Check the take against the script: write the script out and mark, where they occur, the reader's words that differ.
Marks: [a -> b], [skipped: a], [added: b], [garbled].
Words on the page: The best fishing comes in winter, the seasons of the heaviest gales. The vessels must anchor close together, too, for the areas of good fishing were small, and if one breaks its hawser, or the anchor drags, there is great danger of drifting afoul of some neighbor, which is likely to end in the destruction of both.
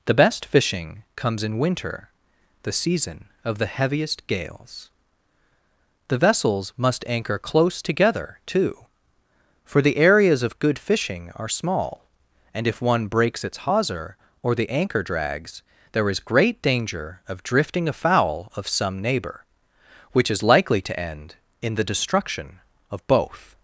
The best fishing comes in winter, the [seasons -> season] of the heaviest gales. The vessels must anchor close together, too, for the areas of good fishing [were -> are] small, and if one breaks its hawser, or the anchor drags, there is great danger of drifting afoul of some neighbor, which is likely to end in the destruction of both.